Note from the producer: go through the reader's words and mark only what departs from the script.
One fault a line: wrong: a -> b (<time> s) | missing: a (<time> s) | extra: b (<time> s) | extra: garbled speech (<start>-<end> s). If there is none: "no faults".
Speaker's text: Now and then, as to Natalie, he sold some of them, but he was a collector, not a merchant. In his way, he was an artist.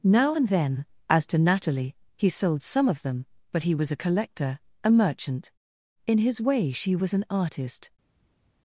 missing: not (4.6 s)
wrong: he -> she (6.7 s)